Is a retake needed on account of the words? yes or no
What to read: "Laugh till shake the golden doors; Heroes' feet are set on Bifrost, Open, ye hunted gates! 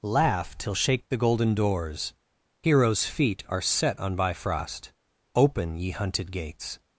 no